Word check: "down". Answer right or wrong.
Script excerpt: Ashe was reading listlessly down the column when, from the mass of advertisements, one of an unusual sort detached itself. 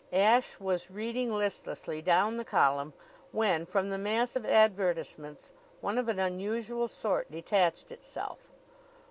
right